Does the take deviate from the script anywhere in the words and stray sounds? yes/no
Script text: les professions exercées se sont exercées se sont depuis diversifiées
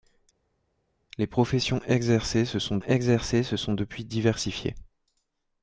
no